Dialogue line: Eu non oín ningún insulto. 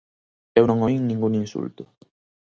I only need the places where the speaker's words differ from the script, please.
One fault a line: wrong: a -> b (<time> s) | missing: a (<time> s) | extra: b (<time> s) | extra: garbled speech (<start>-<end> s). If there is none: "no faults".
no faults